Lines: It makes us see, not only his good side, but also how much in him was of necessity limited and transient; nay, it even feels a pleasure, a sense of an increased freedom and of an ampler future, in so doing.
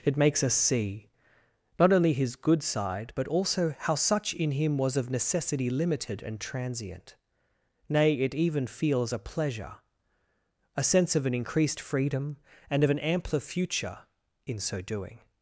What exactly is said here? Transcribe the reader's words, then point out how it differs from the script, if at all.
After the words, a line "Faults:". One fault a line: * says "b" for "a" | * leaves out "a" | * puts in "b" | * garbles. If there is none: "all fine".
It makes us see, not only his good side, but also how such in him was of necessity limited and transient; nay, it even feels a pleasure, a sense of an increased freedom and of an ampler future, in so doing.
Faults:
* says "such" for "much"